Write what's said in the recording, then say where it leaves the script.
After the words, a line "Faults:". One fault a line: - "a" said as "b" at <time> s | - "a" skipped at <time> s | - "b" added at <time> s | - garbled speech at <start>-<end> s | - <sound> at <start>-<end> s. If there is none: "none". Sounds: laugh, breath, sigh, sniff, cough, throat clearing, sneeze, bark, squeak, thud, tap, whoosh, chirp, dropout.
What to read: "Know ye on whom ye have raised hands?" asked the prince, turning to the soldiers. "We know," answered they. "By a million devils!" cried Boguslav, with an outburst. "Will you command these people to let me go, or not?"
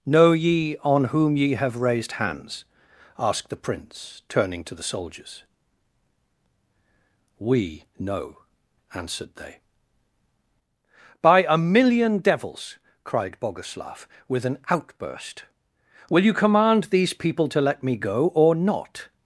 "Know ye on whom ye have raised hands?" asked the prince, turning to the soldiers. "We know," answered they. "By a million devils!" cried Boguslav, with an outburst. "Will you command these people to let me go, or not?"
Faults:
none